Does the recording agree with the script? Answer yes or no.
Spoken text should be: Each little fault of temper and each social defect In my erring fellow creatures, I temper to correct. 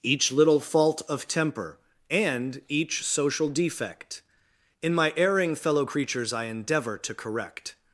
no